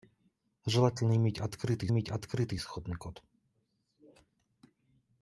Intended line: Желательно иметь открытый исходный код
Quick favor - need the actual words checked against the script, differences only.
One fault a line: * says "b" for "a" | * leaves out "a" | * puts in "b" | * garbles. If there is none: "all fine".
* puts in "иметь открытый"